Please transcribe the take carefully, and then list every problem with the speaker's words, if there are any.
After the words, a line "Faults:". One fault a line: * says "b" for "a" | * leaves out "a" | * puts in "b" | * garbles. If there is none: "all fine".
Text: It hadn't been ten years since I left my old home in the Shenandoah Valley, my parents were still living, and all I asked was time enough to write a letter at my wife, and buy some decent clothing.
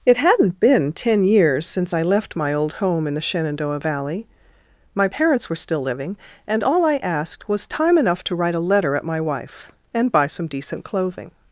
It hadn't been ten years since I left my old home in the Shenandoah Valley, my parents were still living, and all I asked was time enough to write a letter at my wife, and buy some decent clothing.
Faults:
all fine